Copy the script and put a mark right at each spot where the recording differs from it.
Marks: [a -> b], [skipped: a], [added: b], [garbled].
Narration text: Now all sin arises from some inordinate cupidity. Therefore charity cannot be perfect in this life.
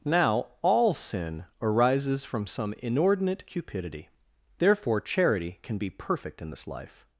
Now all sin arises from some inordinate cupidity. Therefore charity [cannot -> can] be perfect in this life.